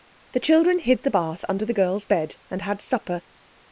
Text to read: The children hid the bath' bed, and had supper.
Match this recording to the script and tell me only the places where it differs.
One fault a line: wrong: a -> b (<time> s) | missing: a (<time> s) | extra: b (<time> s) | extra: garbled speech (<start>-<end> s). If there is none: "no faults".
extra: under the girls (1.5 s)